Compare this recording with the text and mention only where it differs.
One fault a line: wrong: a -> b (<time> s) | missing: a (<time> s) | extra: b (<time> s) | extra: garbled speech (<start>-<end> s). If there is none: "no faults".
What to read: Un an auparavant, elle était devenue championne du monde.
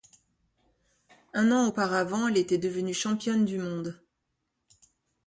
no faults